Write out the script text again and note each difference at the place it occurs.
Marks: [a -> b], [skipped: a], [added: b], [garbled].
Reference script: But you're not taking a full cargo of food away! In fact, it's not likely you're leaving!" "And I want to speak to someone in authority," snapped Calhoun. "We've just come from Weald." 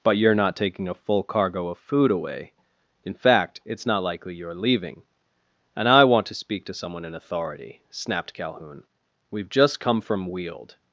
But you're not taking a full cargo of food away! In fact, it's not likely you're leaving!" "And I want to speak to someone in authority," snapped Calhoun. "We've just come from Weald."